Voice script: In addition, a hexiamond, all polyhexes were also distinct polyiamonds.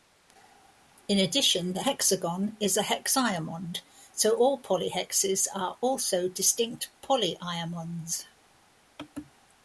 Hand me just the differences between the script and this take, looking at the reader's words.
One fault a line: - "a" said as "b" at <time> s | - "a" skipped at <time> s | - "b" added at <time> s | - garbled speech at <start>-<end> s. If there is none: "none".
- "the hexagon is" added at 1.7 s
- "so" added at 4.1 s
- "were" said as "are" at 5.5 s